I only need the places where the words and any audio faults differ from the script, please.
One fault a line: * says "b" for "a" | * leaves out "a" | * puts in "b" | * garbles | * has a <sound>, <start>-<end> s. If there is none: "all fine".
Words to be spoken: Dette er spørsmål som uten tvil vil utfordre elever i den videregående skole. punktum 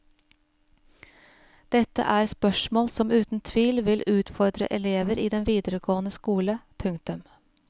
all fine